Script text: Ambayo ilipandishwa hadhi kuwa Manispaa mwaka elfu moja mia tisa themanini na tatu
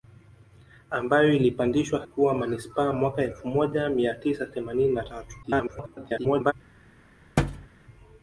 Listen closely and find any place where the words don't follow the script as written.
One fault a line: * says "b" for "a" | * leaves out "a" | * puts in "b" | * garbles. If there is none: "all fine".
* leaves out "hadhi"
* garbles